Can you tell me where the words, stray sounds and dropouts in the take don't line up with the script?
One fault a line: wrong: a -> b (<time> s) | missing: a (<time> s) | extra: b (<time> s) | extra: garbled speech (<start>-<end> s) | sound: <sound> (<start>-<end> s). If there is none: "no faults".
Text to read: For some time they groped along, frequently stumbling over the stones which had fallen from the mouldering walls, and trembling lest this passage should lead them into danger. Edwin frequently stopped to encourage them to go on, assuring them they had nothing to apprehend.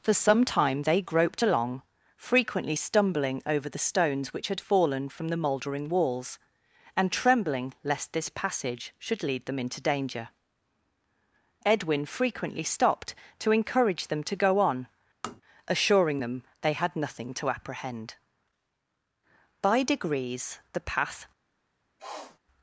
sound: tap (15.2-15.4 s)
extra: By degrees the path (19.6 s)
sound: sniff (22.0-22.4 s)